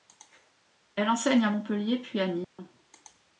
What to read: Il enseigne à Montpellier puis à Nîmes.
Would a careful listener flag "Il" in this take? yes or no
yes